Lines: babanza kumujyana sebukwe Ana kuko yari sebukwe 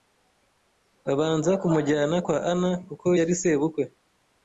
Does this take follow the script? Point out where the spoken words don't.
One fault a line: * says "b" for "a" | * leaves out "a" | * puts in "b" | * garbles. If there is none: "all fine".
* says "kwa" for "sebukwe"